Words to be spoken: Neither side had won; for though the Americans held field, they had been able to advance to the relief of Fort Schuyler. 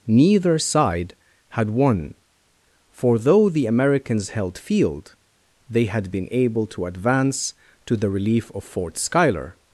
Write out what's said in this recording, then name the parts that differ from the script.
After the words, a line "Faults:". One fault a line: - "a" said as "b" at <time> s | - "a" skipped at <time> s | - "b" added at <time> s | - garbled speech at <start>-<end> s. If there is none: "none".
Neither side had won; for though the Americans held field, they had been able to advance to the relief of Fort Schuyler.
Faults:
none